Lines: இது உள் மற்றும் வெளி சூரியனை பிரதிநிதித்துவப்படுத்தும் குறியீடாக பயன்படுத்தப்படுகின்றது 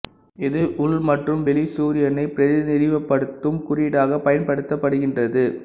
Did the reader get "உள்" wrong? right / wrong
right